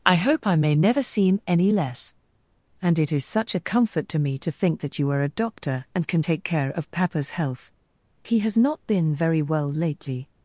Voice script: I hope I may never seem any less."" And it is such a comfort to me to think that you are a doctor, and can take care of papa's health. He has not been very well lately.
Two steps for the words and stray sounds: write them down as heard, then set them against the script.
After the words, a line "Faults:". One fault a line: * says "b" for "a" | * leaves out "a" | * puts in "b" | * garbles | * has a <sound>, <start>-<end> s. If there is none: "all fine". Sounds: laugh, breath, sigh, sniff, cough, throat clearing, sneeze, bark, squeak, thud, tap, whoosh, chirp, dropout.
I hope I may never seem any less."" And it is such a comfort to me to think that you are a doctor, and can take care of papa's health. He has not been very well lately.
Faults:
all fine